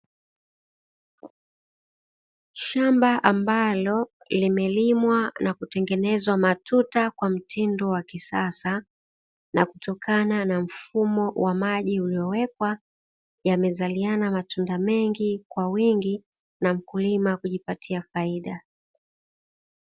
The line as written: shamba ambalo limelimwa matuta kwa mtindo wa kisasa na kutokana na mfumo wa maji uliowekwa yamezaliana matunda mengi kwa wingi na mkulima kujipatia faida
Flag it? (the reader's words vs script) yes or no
yes